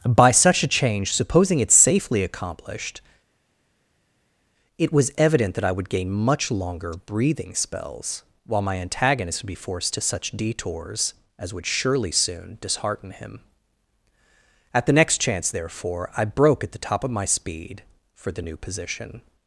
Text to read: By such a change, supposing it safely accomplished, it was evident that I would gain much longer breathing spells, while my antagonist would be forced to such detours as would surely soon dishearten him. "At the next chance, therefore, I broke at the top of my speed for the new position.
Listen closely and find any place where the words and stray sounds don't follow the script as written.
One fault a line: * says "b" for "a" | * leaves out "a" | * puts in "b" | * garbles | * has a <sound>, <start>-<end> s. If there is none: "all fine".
all fine